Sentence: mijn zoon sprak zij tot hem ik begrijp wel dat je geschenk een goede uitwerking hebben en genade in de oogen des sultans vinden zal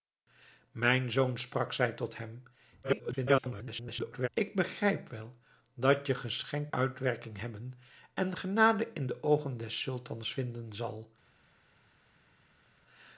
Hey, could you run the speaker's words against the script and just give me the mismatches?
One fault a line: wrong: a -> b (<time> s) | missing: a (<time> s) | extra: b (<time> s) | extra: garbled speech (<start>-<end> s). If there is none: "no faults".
extra: garbled speech (2.8-4.3 s)
missing: een goede (6.7 s)